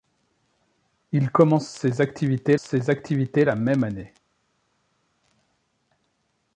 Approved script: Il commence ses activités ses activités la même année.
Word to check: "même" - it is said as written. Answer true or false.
true